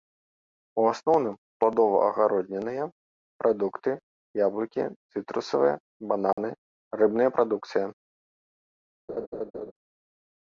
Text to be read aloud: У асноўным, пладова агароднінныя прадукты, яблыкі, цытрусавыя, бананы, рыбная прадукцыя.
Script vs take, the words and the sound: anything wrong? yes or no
yes